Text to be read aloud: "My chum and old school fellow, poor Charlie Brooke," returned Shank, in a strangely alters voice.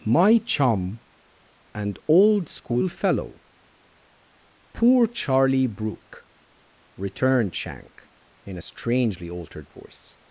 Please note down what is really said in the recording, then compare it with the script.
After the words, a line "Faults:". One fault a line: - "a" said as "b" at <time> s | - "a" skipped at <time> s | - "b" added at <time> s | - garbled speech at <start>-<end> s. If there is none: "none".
"My chum and old school fellow, poor Charlie Brooke," returned Shank, in a strangely altered voice.
Faults:
- "alters" said as "altered" at 9.3 s